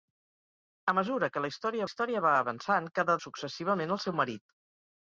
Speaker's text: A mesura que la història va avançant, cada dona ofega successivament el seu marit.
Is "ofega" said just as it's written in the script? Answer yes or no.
no